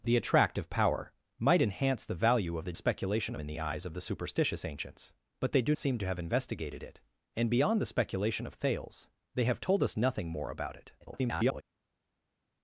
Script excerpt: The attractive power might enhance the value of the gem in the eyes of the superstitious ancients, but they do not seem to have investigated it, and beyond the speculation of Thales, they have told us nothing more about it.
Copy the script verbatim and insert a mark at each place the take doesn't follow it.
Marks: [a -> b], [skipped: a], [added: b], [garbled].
The attractive power might enhance the value of the [gem -> speculation] in the eyes of the superstitious ancients, but they do [skipped: not] seem to have investigated it, and beyond the speculation of Thales, they have told us nothing more about it. [garbled]